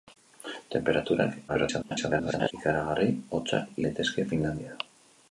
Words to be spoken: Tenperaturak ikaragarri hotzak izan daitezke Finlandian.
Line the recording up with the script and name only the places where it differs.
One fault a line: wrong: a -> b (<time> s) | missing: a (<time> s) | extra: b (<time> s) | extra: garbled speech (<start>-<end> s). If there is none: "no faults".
extra: garbled speech (1.5-2.5 s)
missing: izan (3.8 s)